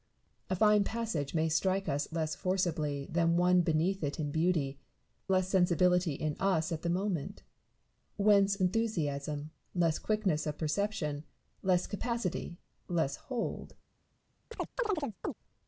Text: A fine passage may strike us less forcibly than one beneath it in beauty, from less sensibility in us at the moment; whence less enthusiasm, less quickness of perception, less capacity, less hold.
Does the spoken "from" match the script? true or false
false